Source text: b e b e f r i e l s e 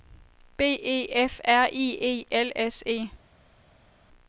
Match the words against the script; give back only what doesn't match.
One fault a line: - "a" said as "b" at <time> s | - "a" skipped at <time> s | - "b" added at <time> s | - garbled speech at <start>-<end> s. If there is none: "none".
- "b e" skipped at 1.1 s